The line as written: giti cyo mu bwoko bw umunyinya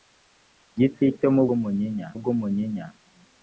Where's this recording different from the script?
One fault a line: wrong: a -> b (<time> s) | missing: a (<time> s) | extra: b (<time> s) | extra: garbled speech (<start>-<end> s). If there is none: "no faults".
wrong: bwoko -> umunyinya (1.6 s)